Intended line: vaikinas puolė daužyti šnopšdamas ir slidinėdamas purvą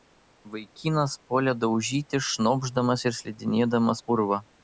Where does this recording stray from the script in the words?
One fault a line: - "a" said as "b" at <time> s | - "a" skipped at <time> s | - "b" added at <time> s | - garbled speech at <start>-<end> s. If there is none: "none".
none